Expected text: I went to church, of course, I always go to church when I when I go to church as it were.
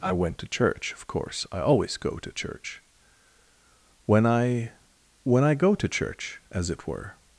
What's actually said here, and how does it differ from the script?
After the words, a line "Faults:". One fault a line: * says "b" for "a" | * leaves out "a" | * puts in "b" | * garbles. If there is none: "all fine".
I went to church, of course, I always go to church when I when I go to church as it were.
Faults:
all fine